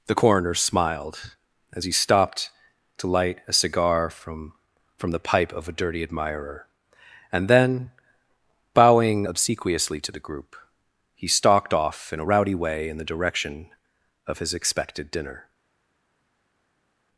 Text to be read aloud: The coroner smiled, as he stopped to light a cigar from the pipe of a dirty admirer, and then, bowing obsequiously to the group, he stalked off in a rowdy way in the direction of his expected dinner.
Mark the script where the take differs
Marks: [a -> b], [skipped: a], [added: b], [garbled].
The coroner smiled, as he stopped to light a cigar from [added: from] the pipe of a dirty admirer, and then, bowing obsequiously to the group, he stalked off in a rowdy way in the direction of his expected dinner.